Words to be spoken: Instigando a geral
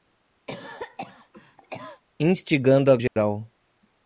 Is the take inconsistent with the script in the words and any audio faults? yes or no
yes